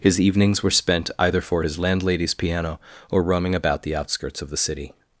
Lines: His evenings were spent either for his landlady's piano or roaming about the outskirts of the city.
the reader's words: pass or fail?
pass